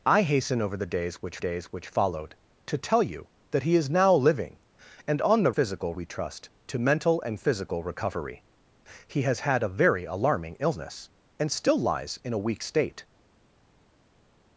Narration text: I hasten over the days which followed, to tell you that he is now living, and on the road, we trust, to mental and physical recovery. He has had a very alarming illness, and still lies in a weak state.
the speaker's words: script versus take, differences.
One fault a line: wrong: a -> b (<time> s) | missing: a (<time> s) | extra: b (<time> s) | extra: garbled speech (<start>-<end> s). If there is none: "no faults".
extra: days which (1.4 s)
wrong: road -> physical (5.5 s)